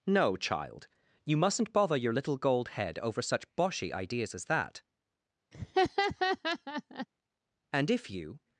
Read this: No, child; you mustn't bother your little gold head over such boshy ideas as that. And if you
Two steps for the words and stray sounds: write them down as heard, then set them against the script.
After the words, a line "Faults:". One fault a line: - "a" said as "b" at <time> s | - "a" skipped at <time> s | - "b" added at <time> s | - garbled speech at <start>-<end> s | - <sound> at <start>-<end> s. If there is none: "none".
No, child; you mustn't bother your little gold head over such boshy ideas as that. And if you
Faults:
- laugh at 5.5-7.1 s